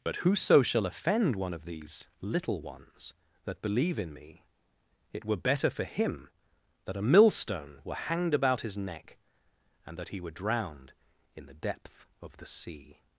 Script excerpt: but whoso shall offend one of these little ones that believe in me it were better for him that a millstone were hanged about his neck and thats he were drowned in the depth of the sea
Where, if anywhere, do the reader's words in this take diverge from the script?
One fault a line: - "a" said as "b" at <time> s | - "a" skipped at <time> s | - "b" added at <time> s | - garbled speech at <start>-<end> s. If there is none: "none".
- "thats" said as "that" at 10.0 s